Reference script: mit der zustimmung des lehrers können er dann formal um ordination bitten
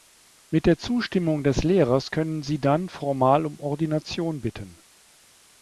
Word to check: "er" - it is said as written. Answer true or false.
false